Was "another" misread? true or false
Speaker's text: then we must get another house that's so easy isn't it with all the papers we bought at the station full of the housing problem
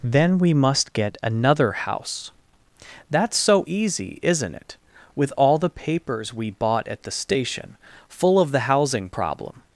false